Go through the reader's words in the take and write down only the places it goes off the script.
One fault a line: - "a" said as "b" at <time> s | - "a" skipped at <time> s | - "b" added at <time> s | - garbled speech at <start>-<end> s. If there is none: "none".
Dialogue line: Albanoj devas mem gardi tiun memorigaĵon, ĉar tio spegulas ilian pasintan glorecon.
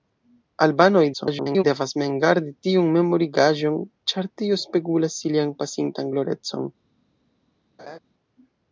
- garbled speech at 1.1-1.6 s